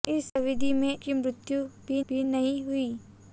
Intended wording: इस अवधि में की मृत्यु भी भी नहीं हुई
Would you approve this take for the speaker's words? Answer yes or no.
yes